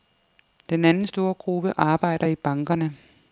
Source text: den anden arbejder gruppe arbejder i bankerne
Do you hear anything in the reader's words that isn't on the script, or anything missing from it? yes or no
yes